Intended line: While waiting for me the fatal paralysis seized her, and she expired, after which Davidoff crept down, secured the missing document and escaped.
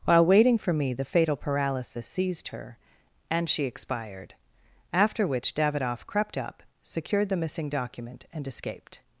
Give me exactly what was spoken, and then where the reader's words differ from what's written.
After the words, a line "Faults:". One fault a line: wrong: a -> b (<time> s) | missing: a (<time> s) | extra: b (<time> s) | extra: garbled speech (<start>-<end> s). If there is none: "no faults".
While waiting for me the fatal paralysis seized her, and she expired, after which Davidoff crept up, secured the missing document and escaped.
Faults:
wrong: down -> up (6.4 s)